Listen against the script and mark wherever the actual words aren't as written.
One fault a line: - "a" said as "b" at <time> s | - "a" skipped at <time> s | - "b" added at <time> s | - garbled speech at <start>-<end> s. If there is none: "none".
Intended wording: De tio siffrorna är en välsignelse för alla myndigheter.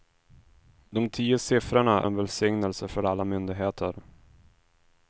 - "är" skipped at 2.0 s